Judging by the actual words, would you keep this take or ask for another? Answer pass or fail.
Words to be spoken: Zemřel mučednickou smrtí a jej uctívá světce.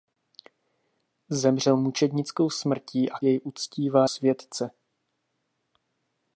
pass